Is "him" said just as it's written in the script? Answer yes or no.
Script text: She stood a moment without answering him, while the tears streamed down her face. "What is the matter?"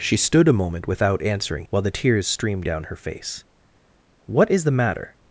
no